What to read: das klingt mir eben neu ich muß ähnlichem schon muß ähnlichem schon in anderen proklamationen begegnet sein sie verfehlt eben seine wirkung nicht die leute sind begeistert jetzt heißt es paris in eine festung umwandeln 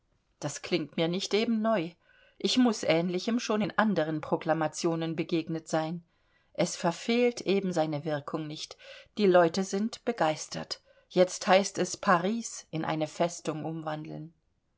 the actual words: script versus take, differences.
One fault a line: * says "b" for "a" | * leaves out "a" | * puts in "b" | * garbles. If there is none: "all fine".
* puts in "nicht"
* leaves out "muß ähnlichem schon"
* says "es" for "sie"